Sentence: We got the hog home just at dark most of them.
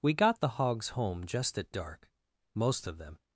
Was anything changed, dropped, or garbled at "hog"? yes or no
yes